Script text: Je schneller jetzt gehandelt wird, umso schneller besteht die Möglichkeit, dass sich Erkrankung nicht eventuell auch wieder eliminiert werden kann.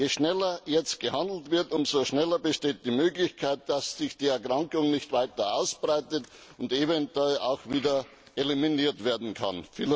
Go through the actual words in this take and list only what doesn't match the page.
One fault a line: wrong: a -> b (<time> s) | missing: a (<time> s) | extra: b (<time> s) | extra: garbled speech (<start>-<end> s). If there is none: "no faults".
extra: die (4.2 s)
extra: weiter ausbreitet und (5.1 s)